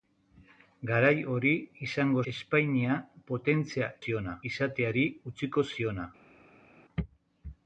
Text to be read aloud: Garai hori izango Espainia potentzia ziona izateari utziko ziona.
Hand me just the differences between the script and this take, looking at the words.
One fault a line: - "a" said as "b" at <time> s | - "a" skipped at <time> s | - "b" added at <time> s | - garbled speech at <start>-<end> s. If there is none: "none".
none